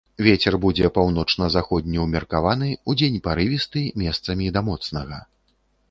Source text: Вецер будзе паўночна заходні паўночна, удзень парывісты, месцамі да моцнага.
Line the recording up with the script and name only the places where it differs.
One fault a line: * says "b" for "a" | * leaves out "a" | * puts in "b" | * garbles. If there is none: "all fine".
* says "ўмеркаваны" for "паўночна"